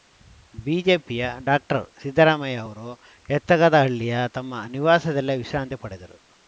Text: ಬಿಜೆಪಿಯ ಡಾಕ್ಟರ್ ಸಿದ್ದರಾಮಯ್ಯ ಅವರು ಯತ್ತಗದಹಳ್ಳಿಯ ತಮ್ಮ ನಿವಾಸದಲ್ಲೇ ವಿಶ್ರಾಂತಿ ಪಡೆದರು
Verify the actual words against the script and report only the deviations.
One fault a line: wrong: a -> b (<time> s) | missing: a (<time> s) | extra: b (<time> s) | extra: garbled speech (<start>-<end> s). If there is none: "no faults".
no faults